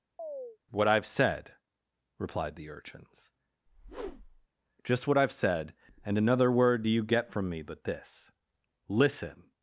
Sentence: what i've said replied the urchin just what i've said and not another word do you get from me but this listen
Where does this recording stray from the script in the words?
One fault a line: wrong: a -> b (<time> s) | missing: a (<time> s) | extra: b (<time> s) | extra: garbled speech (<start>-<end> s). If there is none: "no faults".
wrong: urchin -> urchins (2.7 s)
missing: not (6.2 s)